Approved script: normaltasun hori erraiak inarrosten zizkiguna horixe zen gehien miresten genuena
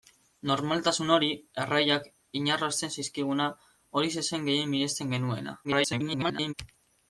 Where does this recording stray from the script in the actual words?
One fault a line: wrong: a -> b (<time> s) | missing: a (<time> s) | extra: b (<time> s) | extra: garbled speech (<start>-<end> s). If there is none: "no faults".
extra: garbled speech (5.6-6.5 s)